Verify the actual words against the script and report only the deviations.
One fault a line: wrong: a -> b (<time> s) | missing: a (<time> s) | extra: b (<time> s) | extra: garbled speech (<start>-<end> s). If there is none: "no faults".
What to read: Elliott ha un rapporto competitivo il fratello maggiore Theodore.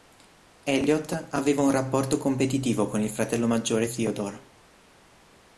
wrong: ha -> aveva (1.3 s)
extra: con (2.9 s)